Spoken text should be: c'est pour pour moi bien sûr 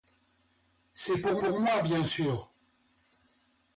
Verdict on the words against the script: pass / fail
pass